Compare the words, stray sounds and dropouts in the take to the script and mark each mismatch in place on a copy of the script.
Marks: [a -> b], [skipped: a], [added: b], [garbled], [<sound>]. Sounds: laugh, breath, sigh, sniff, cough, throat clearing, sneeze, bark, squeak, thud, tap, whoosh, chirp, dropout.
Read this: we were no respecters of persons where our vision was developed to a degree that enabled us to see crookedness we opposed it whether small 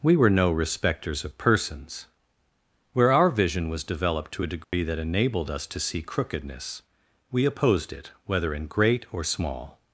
we were no respecters of persons where our vision was developed to a degree [dropout] that enabled us to see crookedness we opposed it whether [added: in great or] small